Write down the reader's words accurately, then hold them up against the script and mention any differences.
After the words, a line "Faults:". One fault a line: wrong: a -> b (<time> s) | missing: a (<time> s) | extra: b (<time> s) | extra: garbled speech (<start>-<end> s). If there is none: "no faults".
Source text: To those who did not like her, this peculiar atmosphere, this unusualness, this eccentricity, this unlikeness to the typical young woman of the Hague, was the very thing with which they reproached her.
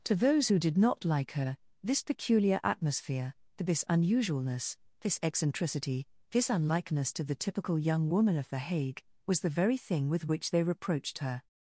To those who did not like her, this peculiar atmosphere, this unusualness, this eccentricity, this unlikeness to the typical young woman of the Hague, was the very thing with which they reproached her.
Faults:
no faults